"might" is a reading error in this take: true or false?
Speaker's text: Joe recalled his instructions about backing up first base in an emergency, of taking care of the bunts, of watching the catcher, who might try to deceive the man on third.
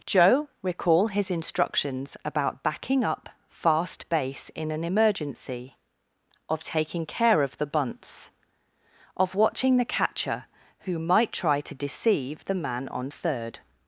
false